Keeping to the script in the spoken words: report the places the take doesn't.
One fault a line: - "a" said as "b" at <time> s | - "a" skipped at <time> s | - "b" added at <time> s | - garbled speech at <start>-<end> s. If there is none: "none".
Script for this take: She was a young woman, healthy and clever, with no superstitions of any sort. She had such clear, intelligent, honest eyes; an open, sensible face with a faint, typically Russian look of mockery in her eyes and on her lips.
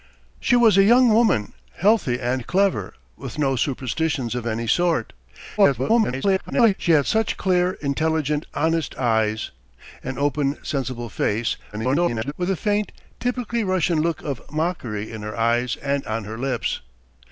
- garbled speech at 5.6-6.7 s
- garbled speech at 11.7-12.3 s